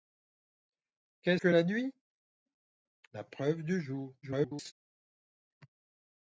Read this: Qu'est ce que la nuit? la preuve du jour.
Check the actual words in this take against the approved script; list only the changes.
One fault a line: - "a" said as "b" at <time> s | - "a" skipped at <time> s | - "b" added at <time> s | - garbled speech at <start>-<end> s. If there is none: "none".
- "ce" skipped at 1.4 s
- garbled speech at 4.2-4.7 s